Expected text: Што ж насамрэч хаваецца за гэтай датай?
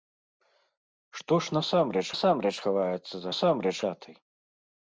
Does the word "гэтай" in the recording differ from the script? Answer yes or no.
yes